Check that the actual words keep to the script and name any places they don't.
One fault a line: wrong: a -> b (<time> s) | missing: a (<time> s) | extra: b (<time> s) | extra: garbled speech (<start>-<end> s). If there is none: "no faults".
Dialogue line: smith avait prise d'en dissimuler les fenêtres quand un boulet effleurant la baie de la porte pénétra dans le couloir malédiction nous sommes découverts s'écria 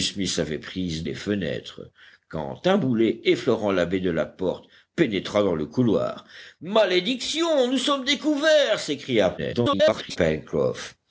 missing: d'en dissimuler (1.0 s)
extra: garbled speech (9.4-10.2 s)